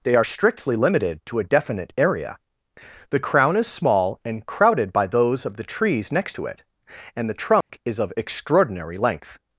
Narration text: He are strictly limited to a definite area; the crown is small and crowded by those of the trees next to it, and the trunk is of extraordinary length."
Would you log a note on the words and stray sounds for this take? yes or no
yes